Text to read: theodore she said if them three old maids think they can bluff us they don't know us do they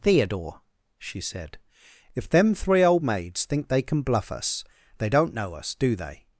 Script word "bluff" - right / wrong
right